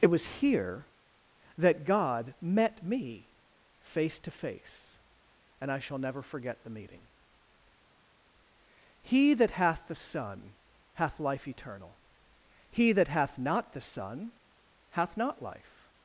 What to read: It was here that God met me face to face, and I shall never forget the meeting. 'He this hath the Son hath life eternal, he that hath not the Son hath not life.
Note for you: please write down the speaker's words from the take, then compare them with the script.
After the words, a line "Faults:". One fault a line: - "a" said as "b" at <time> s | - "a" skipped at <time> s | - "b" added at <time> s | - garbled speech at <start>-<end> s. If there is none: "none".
It was here that God met me face to face, and I shall never forget the meeting. 'He that hath the Son hath life eternal, he that hath not the Son hath not life.
Faults:
- "this" said as "that" at 9.3 s